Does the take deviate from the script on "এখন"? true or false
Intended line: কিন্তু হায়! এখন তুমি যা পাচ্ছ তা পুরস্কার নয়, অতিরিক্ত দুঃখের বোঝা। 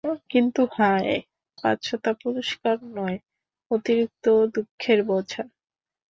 true